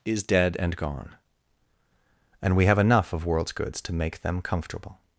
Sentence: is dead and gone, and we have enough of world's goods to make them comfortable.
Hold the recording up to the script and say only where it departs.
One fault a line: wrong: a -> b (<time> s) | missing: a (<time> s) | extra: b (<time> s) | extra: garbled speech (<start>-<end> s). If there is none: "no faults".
no faults